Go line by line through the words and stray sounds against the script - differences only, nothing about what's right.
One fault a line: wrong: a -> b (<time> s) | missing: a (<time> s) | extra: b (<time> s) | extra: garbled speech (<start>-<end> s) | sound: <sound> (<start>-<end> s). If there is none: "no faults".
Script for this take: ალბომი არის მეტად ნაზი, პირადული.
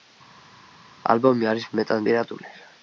missing: ნაზი (2.1 s)